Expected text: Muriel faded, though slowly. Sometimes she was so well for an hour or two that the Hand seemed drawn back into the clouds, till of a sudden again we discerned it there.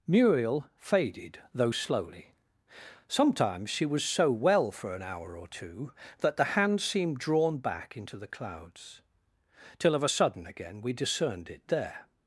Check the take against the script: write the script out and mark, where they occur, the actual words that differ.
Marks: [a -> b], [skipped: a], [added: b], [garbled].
Muriel faded, though slowly. Sometimes she was so well for an hour or two that the Hand seemed drawn back into the clouds, till of a sudden again we discerned it there.